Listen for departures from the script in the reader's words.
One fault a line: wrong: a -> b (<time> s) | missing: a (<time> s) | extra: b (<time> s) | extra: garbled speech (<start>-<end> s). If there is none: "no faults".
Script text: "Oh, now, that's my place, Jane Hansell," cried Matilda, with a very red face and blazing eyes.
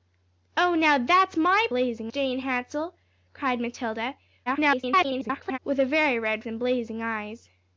wrong: place -> blazing (1.7 s)
extra: garbled speech (4.5-5.6 s)
missing: face (6.4 s)